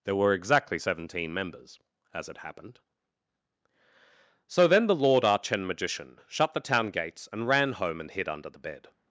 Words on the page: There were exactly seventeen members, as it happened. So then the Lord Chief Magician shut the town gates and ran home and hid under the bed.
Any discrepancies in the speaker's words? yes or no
yes